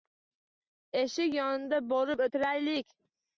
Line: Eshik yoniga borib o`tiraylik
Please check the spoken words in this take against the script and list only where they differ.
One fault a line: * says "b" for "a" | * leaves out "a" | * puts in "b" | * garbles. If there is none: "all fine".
all fine